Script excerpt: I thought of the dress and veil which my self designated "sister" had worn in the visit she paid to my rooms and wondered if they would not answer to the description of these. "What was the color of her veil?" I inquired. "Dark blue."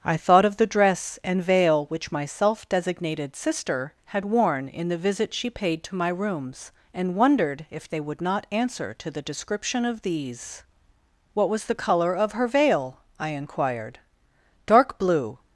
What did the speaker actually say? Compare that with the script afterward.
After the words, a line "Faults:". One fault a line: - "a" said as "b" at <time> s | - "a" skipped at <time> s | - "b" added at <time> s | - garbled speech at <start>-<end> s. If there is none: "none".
I thought of the dress and veil which my self designated "sister" had worn in the visit she paid to my rooms and wondered if they would not answer to the description of these. "What was the color of her veil?" I inquired. "Dark blue."
Faults:
none